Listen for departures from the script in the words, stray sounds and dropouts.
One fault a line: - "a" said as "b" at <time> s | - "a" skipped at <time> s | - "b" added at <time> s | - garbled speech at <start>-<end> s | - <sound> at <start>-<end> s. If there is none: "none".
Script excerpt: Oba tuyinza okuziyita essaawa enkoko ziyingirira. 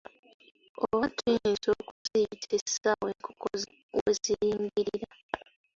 - dropout at 1.9-2.1 s
- "we" added at 4.0 s